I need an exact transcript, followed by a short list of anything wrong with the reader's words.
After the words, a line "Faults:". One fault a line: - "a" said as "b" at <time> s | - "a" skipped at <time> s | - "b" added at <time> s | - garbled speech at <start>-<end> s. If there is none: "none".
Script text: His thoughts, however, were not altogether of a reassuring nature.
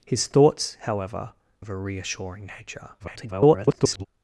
His thoughts, however, of a reassuring nature. [garbled]
Faults:
- "were not altogether" skipped at 1.3 s
- garbled speech at 3.0-4.1 s